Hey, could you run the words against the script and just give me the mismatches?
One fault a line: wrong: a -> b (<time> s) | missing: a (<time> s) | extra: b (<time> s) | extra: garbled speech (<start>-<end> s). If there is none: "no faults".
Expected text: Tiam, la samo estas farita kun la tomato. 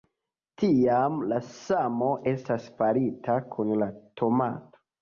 no faults